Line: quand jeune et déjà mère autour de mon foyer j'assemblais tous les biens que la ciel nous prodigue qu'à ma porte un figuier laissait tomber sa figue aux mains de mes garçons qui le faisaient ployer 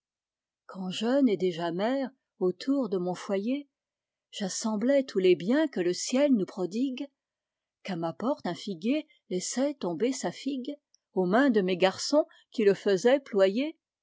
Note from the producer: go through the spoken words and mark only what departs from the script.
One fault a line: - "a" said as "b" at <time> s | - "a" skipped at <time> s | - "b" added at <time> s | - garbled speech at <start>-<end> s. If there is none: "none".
- "la" said as "le" at 5.8 s